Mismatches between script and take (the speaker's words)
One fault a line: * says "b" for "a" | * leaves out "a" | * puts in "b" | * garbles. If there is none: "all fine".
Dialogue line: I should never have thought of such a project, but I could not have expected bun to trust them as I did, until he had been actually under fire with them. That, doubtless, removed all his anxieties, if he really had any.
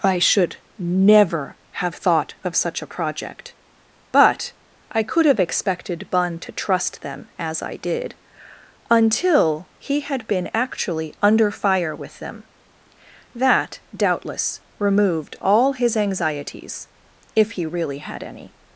* leaves out "not"